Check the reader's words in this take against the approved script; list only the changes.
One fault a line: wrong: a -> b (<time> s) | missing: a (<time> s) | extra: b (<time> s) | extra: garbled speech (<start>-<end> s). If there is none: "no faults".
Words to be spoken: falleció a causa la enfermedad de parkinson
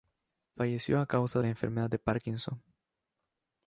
no faults